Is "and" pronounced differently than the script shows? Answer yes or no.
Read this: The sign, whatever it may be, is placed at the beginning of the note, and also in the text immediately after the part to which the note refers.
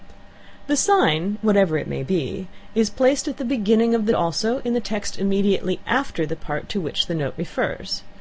yes